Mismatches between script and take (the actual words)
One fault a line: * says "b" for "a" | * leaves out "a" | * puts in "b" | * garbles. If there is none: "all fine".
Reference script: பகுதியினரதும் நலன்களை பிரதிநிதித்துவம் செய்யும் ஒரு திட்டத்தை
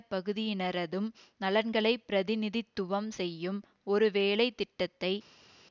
* puts in "வேலை"